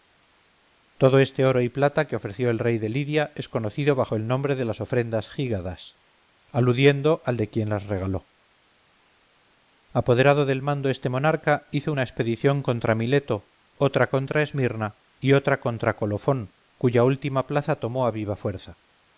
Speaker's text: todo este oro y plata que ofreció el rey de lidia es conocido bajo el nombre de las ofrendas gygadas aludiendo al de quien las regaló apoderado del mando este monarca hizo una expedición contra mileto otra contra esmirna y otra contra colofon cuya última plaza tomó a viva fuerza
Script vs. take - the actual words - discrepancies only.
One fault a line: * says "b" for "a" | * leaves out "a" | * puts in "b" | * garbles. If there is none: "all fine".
all fine